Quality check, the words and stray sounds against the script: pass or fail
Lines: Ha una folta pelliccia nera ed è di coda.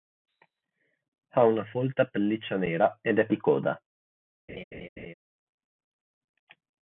fail